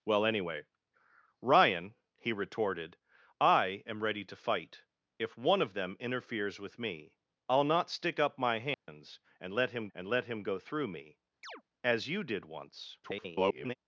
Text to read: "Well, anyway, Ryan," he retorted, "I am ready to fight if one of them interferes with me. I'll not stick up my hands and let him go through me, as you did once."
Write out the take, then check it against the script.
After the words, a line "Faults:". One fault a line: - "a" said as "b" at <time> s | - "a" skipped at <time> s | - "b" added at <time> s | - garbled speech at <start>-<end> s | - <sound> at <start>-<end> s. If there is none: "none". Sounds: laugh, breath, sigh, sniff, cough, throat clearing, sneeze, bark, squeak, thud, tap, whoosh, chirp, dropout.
"Well, anyway, Ryan," he retorted, "I am ready to fight if one of them interferes with me. I'll not stick up my hands and let him and let him go through me, as you did once." [garbled]
Faults:
- dropout at 8.7-8.9 s
- "and let him" added at 9.9 s
- chirp at 11.4-11.6 s
- garbled speech at 13.0-13.8 s